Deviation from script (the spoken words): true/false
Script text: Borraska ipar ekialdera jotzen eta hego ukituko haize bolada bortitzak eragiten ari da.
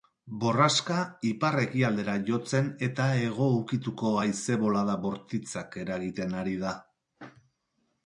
false